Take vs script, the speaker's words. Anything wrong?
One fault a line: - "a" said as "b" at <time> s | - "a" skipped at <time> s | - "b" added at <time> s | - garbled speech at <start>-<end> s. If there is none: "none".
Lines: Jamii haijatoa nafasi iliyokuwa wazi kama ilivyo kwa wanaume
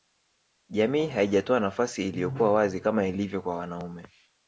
none